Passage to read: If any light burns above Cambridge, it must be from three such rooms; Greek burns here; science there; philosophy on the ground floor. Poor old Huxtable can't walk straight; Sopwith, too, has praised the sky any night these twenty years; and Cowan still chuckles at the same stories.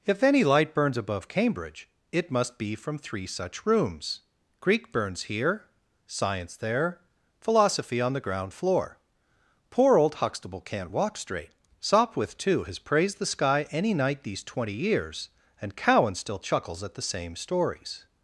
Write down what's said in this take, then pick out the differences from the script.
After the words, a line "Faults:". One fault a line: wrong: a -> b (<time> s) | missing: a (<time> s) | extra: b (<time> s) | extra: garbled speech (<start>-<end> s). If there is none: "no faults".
If any light burns above Cambridge, it must be from three such rooms; Greek burns here; science there; philosophy on the ground floor. Poor old Huxtable can't walk straight; Sopwith, too, has praised the sky any night these twenty years; and Cowan still chuckles at the same stories.
Faults:
no faults